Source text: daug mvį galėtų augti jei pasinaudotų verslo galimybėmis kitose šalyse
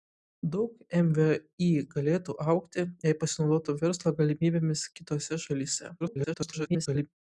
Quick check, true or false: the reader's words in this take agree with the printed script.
false